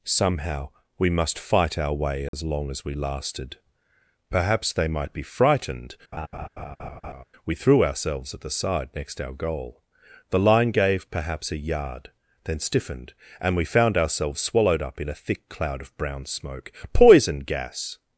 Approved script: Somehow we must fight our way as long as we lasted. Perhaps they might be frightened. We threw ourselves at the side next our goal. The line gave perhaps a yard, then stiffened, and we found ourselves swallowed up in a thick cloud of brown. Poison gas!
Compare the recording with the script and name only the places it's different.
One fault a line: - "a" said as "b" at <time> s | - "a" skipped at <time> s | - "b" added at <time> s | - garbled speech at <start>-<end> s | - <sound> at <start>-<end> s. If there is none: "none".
- dropout at 2.3-2.3 s
- laugh at 6.1-7.2 s
- "smoke" added at 16.2 s